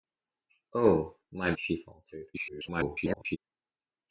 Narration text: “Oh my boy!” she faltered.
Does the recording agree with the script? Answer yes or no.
no